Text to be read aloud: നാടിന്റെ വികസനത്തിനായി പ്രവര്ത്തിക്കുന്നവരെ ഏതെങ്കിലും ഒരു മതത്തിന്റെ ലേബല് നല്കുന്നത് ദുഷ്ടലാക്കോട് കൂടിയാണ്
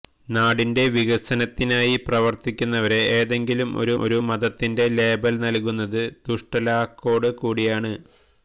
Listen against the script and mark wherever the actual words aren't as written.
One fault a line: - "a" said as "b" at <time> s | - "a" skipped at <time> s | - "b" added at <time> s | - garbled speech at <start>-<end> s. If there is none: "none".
- "ഒരു" added at 4.0 s